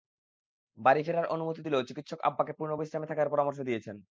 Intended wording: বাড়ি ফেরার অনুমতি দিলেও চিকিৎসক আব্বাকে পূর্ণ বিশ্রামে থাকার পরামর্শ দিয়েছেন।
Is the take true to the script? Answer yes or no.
yes